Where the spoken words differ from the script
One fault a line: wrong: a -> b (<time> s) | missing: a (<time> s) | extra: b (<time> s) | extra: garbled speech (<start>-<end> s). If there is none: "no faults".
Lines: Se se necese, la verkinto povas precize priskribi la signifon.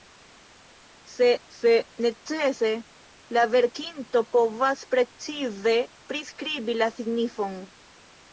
no faults